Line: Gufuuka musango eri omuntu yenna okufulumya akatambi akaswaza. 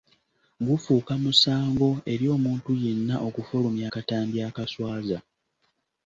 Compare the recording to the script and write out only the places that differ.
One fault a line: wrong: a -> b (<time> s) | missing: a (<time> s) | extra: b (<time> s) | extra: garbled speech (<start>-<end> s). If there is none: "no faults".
no faults